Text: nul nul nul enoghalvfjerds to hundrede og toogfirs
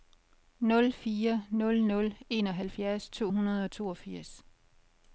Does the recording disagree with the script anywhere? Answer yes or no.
yes